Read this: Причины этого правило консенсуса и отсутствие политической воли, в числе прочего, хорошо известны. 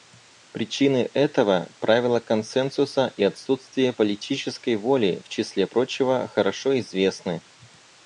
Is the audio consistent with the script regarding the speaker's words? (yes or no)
yes